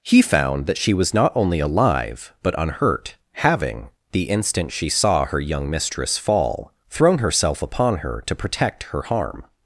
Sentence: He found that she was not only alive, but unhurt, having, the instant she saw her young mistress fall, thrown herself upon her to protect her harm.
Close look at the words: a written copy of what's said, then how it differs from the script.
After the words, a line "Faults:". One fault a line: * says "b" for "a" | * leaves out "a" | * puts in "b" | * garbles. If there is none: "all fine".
He found that she was not only alive, but unhurt, having, the instant she saw her young mistress fall, thrown herself upon her to protect her harm.
Faults:
all fine